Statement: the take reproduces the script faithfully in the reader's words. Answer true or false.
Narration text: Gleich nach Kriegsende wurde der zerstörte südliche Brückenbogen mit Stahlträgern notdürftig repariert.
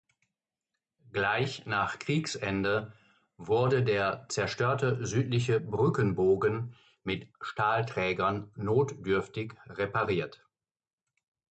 true